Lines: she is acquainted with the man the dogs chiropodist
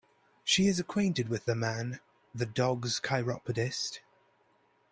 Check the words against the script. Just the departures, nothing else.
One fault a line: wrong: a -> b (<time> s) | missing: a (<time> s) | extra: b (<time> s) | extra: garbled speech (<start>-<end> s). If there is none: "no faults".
no faults